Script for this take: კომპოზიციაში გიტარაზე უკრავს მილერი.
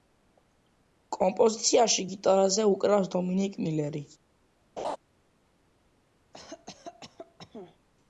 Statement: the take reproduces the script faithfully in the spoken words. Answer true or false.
false